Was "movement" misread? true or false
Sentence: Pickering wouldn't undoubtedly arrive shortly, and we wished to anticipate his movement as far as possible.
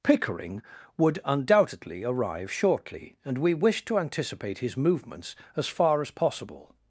true